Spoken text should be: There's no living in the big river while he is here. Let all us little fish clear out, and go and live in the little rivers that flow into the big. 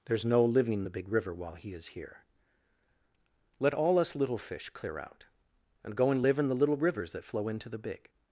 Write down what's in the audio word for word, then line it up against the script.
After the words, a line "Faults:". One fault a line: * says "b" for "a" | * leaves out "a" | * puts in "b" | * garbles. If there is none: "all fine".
There's no living the big river while he is here. Let all us little fish clear out, and go and live in the little rivers that flow into the big.
Faults:
* leaves out "in"